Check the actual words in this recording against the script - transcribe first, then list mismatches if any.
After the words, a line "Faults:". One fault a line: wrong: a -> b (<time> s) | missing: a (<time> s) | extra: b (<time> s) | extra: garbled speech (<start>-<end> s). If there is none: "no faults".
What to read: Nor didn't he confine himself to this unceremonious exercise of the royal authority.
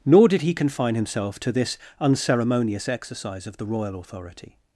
Nor did he confine himself to this unceremonious exercise of the royal authority.
Faults:
wrong: didn't -> did (0.3 s)